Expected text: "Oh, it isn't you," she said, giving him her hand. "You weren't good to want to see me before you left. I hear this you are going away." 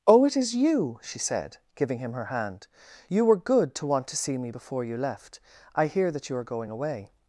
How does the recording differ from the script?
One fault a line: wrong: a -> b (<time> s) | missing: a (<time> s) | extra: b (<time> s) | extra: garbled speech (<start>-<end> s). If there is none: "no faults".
wrong: isn't -> is (0.3 s)
wrong: weren't -> were (3.2 s)
wrong: this -> that (6.1 s)